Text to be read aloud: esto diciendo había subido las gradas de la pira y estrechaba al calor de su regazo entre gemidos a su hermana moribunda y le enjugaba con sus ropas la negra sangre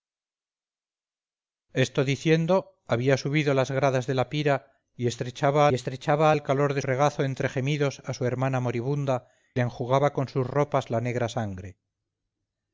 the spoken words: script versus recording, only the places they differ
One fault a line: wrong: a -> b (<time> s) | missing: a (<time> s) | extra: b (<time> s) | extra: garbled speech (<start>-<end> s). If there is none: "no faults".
extra: estrechaba (5.7 s)
missing: su (6.8 s)
missing: y (9.3 s)